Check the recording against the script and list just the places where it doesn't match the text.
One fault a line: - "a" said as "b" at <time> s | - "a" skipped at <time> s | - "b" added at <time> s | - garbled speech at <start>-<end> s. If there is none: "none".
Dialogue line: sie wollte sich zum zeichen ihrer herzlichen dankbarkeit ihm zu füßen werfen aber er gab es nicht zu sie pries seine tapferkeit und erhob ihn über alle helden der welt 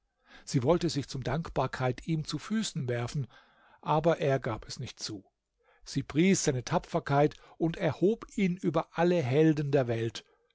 - "zeichen ihrer herzlichen" skipped at 1.2 s